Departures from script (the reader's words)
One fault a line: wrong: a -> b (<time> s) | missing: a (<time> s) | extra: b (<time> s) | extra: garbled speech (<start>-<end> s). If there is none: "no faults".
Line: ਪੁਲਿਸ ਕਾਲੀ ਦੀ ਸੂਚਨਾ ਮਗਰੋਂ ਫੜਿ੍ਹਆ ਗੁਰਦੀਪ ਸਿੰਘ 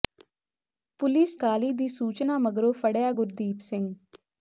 no faults